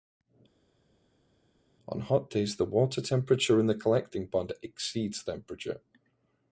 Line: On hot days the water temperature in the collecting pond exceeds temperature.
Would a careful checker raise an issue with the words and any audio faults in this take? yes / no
no